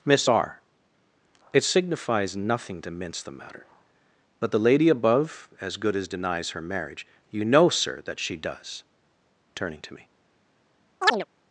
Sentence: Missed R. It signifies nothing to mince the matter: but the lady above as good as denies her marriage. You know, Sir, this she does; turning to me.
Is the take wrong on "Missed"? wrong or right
wrong